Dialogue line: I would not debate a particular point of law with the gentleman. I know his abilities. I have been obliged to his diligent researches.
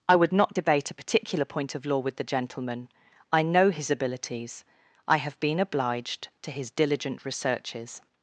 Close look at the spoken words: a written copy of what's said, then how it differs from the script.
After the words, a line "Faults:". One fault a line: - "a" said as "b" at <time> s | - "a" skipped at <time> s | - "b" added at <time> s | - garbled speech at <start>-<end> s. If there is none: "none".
I would not debate a particular point of law with the gentleman. I know his abilities. I have been obliged to his diligent researches.
Faults:
none